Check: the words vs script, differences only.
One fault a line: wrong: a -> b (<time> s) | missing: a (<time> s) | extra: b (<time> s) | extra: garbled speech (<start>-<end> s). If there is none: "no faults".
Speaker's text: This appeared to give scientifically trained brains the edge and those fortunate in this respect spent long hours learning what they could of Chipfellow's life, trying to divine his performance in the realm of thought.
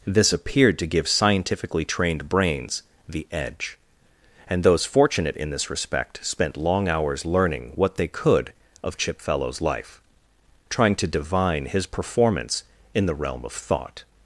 no faults